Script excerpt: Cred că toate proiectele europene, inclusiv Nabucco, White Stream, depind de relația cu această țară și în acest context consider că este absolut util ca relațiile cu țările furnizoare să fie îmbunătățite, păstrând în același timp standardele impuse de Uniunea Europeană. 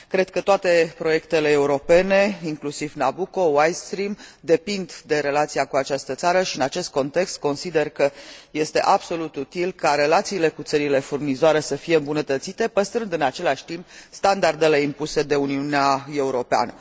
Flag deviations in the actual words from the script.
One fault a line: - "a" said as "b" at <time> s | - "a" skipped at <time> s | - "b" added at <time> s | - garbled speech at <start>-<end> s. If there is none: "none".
none